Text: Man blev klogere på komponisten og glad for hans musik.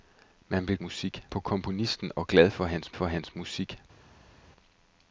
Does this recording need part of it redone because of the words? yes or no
yes